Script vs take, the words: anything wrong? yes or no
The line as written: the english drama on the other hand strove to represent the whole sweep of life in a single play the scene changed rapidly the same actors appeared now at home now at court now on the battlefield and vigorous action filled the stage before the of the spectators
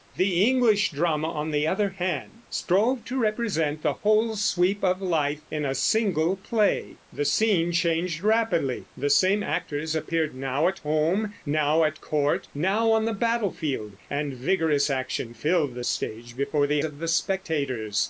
no